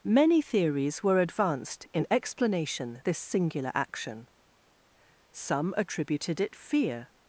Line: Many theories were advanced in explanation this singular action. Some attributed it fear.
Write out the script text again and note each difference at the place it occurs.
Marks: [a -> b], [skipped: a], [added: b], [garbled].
Many theories were advanced in explanation this singular action. Some attributed it fear.